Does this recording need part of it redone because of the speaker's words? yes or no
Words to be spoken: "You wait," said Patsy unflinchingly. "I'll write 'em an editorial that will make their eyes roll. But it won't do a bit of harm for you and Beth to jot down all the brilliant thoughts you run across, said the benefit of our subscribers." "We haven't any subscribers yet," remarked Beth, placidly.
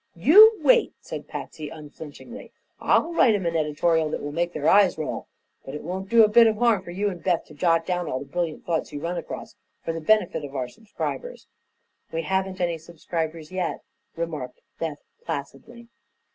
yes